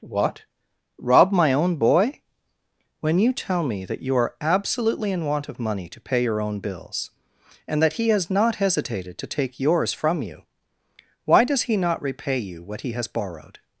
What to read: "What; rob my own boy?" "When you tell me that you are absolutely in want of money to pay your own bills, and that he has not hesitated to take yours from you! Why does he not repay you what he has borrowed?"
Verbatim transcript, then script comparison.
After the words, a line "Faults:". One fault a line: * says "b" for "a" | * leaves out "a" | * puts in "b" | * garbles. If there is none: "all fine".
"What; rob my own boy?" "When you tell me that you are absolutely in want of money to pay your own bills, and that he has not hesitated to take yours from you! Why does he not repay you what he has borrowed?"
Faults:
all fine